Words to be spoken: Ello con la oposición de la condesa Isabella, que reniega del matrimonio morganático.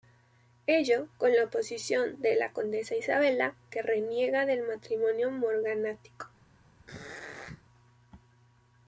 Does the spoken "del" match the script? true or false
true